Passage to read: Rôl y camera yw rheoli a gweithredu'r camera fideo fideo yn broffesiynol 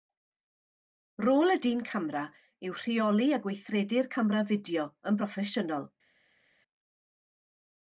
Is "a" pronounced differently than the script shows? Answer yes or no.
no